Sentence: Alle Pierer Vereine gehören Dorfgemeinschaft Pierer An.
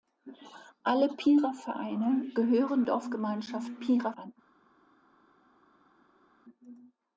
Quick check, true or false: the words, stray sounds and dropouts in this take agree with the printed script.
true